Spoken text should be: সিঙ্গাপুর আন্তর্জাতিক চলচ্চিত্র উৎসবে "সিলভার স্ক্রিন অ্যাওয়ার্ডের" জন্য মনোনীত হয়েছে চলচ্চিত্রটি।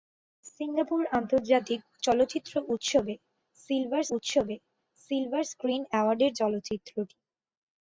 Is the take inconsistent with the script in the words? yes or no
yes